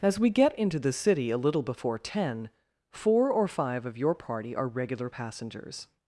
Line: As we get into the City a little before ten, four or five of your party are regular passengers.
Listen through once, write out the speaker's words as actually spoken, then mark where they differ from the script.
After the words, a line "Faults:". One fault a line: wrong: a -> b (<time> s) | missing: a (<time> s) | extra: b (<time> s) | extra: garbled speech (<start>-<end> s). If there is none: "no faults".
As we get into the City a little before ten, four or five of your party are regular passengers.
Faults:
no faults